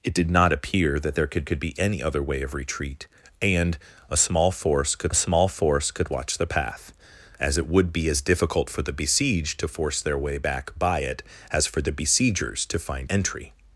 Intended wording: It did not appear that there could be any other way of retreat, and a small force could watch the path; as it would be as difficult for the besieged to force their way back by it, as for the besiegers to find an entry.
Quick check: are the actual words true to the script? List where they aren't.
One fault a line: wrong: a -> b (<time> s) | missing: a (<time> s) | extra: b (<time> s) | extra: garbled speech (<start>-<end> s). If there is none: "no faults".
extra: could (1.4 s)
extra: small force could (5.1 s)
missing: an (13.1 s)